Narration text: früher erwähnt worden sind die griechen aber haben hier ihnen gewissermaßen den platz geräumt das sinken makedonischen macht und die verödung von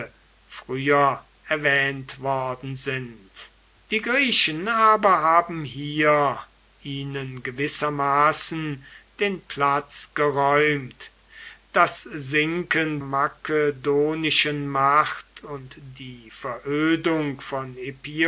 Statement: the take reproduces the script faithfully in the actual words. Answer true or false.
true